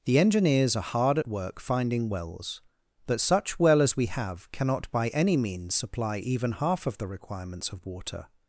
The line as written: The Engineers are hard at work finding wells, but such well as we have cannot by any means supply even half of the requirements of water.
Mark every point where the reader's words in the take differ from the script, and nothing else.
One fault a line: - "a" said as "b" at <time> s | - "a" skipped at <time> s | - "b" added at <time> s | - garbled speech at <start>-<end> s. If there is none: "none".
none